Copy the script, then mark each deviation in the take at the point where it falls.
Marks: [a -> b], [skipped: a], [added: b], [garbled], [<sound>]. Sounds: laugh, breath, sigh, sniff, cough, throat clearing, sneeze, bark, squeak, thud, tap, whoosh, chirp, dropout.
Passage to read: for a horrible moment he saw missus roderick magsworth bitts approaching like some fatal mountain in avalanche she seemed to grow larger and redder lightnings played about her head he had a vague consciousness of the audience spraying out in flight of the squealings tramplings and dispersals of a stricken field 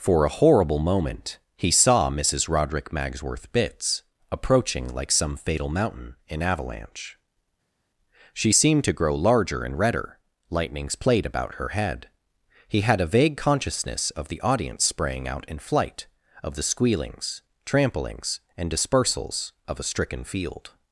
for a horrible moment he saw missus roderick magsworth bitts approaching like some fatal mountain in avalanche she seemed to grow larger and redder lightnings played about her head he had a vague consciousness of the audience spraying out in flight of the squealings tramplings and dispersals of a stricken field